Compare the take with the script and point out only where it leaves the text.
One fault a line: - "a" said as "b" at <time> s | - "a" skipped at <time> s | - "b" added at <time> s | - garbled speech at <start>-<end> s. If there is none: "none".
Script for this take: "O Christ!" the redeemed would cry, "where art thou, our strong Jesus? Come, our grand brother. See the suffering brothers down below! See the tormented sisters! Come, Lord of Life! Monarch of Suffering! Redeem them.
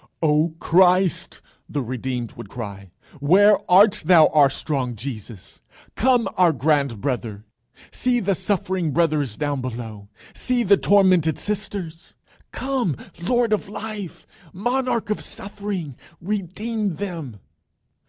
none